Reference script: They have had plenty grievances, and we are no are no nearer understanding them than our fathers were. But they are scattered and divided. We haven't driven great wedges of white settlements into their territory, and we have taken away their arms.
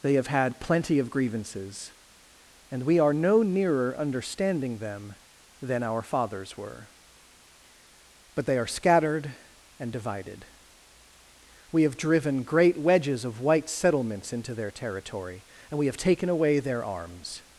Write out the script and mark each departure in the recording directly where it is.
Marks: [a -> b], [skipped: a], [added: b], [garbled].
They have had plenty [added: of] grievances, and we are no [skipped: are no] nearer understanding them than our fathers were. But they are scattered and divided. We [haven't -> have] driven great wedges of white settlements into their territory, and we have taken away their arms.